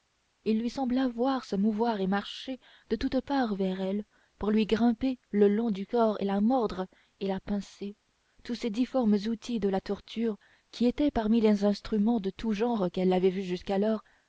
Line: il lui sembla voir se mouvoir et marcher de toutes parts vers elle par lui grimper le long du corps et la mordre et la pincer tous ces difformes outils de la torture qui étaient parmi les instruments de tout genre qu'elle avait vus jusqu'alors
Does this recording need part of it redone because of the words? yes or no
yes